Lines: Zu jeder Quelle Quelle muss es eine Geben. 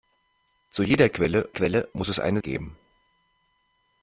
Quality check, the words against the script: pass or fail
pass